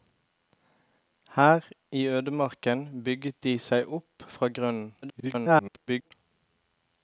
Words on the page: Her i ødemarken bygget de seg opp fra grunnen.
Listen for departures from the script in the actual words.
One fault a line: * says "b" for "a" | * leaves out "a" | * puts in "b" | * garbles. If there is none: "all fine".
* garbles